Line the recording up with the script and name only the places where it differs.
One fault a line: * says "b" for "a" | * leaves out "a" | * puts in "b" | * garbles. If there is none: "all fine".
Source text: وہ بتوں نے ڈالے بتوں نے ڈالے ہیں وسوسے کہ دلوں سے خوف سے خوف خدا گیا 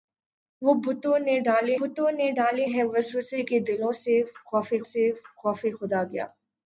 all fine